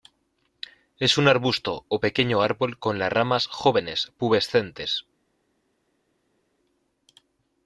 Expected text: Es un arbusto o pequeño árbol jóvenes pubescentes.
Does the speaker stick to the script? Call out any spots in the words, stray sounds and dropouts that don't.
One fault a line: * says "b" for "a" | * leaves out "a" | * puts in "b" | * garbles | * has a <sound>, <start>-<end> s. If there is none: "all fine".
* puts in "con las ramas"